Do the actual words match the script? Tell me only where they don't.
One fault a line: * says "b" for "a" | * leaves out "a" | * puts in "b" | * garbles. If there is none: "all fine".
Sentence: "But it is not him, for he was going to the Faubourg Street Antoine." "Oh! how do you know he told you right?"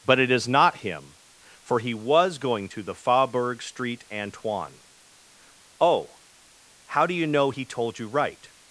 all fine